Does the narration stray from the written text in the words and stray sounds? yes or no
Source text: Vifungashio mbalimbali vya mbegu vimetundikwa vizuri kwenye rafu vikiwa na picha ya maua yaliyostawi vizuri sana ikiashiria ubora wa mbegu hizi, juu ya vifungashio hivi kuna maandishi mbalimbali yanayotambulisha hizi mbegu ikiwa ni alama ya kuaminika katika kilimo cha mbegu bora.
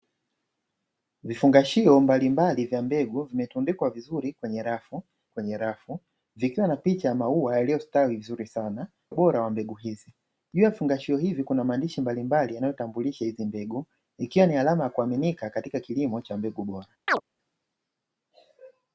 yes